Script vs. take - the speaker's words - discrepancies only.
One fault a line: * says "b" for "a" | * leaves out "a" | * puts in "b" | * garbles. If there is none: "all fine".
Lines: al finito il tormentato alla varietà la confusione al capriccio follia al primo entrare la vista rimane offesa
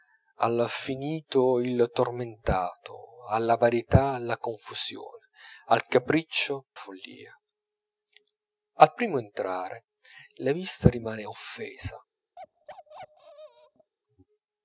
all fine